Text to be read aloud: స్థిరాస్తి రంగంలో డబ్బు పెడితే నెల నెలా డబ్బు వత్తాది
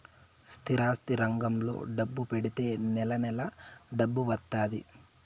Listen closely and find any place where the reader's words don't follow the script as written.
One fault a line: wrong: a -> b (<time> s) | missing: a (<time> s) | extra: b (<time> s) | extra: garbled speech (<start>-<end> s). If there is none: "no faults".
no faults